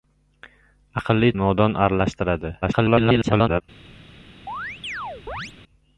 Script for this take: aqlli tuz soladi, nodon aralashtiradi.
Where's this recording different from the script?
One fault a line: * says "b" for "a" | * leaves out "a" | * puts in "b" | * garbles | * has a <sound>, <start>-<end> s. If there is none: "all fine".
* leaves out "tuz soladi"
* garbles
* has a chirp, 4.5-5.5 s